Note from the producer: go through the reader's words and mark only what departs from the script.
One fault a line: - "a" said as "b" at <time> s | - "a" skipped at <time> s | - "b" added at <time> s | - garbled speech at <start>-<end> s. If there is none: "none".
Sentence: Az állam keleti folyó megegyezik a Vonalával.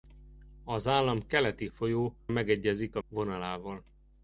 none